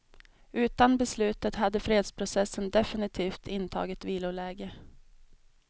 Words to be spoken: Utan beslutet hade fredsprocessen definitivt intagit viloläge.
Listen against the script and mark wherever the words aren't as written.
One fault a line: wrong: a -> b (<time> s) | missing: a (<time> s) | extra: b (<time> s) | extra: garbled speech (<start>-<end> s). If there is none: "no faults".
no faults